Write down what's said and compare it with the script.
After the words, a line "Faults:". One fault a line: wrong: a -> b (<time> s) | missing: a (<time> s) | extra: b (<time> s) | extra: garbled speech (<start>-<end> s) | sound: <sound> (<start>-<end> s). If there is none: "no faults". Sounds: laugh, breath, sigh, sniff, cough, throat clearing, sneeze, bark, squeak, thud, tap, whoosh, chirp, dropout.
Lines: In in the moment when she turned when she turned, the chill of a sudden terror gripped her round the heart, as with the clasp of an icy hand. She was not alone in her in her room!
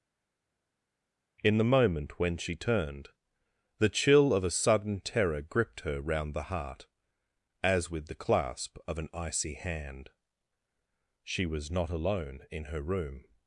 In the moment when she turned, the chill of a sudden terror gripped her round the heart, as with the clasp of an icy hand. She was not alone in her room!
Faults:
missing: in (1.6 s)
missing: when she turned (3.1 s)
missing: in her (12.8 s)